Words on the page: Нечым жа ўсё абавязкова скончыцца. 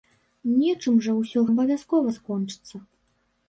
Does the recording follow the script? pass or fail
pass